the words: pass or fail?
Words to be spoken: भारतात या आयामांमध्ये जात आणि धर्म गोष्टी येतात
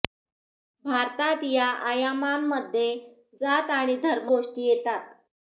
pass